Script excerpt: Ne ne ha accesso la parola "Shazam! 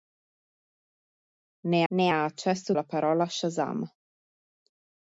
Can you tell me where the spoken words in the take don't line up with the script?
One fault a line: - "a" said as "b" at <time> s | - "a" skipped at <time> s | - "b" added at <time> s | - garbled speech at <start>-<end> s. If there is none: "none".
none